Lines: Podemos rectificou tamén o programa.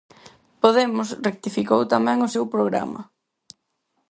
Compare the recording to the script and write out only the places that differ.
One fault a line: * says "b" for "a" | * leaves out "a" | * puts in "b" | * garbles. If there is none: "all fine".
* puts in "seu"